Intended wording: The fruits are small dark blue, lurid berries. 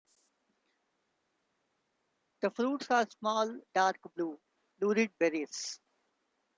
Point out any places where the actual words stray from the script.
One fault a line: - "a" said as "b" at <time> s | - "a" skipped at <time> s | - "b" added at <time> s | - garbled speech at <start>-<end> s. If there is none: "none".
none